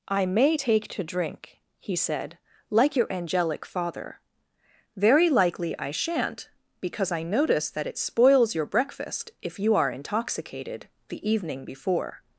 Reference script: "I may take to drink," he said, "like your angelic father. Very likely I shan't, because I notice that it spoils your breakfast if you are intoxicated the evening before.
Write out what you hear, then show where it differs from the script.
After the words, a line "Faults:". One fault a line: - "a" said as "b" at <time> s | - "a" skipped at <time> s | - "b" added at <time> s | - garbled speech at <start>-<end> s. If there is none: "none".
"I may take to drink," he said, "like your angelic father. Very likely I shan't, because I notice that it spoils your breakfast if you are intoxicated the evening before.
Faults:
none